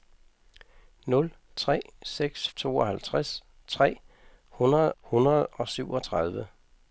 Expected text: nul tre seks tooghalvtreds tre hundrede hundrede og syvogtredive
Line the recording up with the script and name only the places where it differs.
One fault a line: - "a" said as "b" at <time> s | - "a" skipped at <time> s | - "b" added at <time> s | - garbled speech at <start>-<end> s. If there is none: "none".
none